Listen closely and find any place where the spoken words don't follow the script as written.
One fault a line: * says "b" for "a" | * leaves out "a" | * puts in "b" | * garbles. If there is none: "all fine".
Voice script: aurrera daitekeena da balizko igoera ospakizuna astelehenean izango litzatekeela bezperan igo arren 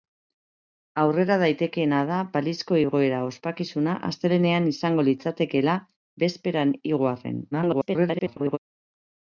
* garbles